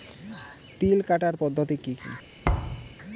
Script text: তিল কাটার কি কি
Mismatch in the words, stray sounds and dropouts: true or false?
true